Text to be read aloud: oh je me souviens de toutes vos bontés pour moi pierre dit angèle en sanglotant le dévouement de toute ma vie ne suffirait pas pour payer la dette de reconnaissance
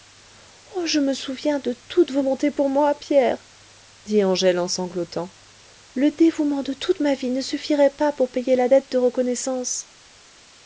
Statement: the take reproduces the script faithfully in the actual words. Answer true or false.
true